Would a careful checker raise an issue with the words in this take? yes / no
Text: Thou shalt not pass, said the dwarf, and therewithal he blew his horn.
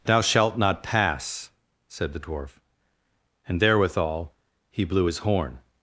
no